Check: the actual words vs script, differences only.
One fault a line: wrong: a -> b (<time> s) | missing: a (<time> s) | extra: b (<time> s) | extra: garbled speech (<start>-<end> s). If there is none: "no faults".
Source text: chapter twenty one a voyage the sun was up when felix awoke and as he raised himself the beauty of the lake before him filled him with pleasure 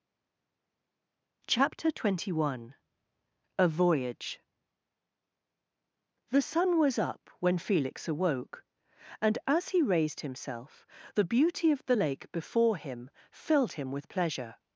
no faults